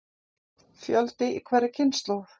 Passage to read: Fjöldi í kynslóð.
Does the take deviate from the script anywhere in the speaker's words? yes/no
yes